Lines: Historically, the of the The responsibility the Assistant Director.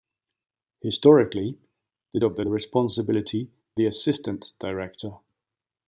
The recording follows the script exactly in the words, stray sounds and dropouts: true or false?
true